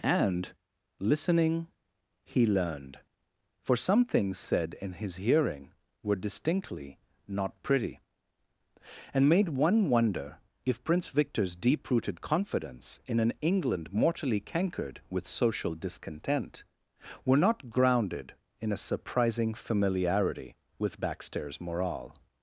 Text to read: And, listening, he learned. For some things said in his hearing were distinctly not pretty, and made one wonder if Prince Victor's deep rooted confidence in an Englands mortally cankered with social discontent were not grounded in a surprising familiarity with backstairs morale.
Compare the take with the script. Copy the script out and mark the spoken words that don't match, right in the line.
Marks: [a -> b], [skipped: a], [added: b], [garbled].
And, listening, he learned. For some things said in his hearing were distinctly not pretty, and made one wonder if Prince Victor's deep rooted confidence in an [Englands -> England] mortally cankered with social discontent were not grounded in a surprising familiarity with backstairs morale.